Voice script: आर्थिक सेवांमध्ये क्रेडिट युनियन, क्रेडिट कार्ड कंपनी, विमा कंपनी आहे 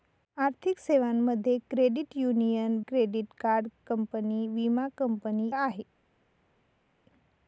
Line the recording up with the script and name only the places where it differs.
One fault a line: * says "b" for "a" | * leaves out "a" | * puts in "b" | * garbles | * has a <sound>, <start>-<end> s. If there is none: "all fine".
all fine